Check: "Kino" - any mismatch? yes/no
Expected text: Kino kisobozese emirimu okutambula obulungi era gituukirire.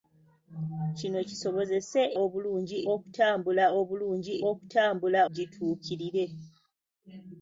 no